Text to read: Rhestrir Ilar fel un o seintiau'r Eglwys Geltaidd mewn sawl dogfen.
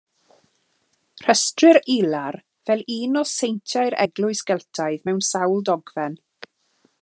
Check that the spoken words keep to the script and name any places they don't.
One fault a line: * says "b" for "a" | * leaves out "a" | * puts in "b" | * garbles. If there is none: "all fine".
all fine